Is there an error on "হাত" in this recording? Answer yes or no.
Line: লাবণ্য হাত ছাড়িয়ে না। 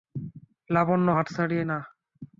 no